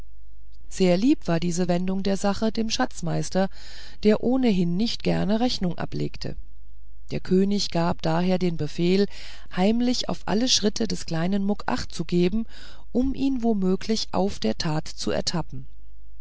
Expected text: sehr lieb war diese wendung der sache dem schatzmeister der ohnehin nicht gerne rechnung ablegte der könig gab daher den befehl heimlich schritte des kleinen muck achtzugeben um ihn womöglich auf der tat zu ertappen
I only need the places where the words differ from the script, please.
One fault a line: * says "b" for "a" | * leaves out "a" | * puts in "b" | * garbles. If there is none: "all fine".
* puts in "auf alle"